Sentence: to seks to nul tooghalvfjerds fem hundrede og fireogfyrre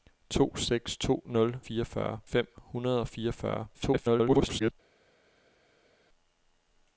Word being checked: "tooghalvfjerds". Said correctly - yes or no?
no